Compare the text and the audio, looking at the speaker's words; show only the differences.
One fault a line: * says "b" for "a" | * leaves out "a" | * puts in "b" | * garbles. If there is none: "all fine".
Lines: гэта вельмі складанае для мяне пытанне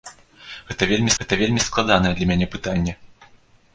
* puts in "гэта вельмі"